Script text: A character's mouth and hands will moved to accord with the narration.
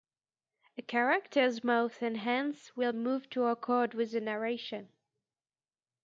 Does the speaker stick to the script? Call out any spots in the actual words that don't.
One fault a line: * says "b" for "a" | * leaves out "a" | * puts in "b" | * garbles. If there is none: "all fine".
all fine